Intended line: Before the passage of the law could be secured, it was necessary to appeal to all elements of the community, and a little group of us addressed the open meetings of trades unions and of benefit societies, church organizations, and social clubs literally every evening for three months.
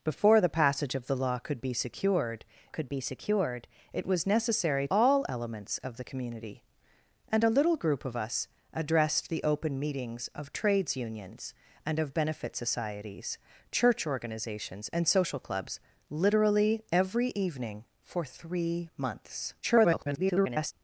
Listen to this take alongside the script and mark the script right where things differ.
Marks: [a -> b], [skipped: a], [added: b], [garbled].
Before the passage of the law could be secured, [added: could be secured] it was necessary [skipped: to appeal to] all elements of the community, and a little group of us addressed the open meetings of trades unions and of benefit societies, church organizations, and social clubs literally every evening for three months. [garbled]